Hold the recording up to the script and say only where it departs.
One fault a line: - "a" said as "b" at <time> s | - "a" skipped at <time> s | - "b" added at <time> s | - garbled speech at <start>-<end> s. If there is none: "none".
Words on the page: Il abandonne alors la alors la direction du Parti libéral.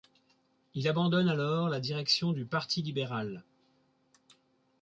- "alors la" skipped at 1.8 s